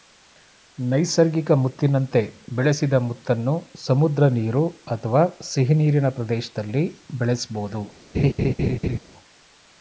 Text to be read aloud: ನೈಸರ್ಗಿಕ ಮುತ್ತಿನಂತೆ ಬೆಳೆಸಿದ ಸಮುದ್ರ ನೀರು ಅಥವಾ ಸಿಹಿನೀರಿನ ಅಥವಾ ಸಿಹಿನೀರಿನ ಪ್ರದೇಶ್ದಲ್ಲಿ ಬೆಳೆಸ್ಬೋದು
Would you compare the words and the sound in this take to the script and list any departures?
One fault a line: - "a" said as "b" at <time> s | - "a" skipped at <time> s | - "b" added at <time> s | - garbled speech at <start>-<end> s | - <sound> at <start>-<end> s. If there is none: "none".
- "ಮುತ್ತನ್ನು" added at 3.0 s
- "ಅಥವಾ ಸಿಹಿನೀರಿನ" skipped at 6.1 s
- laugh at 8.1-9.0 s